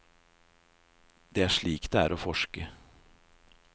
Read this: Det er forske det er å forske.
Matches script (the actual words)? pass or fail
fail